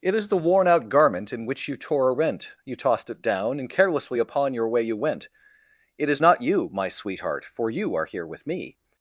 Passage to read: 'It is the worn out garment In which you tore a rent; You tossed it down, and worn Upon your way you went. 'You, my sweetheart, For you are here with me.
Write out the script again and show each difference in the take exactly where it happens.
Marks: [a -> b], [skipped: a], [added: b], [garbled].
'It is the worn out garment In which you tore a rent; You tossed it down, and [worn -> carelessly] Upon your way you went. [added: It is not] 'You, my sweetheart, For you are here with me.